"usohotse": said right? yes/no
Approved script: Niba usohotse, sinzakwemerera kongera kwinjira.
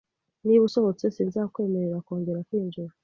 yes